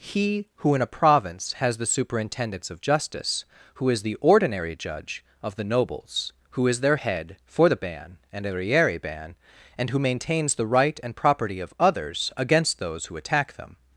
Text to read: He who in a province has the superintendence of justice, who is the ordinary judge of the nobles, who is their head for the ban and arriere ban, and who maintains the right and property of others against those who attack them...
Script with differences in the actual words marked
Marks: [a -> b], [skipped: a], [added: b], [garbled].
He who in a province has the superintendence of justice, who is the ordinary judge of the nobles, who is their head for the ban and arriere ban, and who maintains the right and property of others against those who attack them...